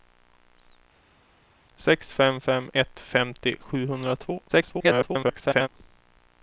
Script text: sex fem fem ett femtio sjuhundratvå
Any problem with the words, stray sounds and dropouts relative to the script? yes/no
yes